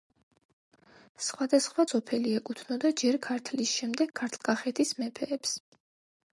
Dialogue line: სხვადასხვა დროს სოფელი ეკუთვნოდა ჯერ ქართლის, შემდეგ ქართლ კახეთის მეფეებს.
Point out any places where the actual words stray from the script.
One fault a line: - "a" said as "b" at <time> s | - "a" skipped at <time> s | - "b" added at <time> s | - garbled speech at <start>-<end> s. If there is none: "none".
- "დროს" skipped at 1.8 s